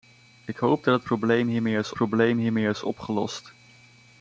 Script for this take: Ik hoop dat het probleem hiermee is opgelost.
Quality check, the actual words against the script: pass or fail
fail